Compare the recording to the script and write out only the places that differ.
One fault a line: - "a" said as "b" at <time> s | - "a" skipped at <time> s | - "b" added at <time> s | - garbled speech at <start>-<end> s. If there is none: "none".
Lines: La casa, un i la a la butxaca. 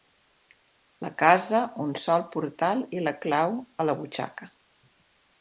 - "sol portal" added at 2.0 s
- "clau" added at 3.3 s